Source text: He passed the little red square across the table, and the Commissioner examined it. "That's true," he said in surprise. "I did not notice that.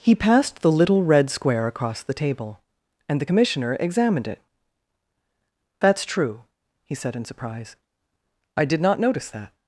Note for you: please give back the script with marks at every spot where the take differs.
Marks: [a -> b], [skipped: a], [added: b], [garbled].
He passed the little red square across the table, and the Commissioner examined it. "That's true," he said in surprise. "I did not notice that.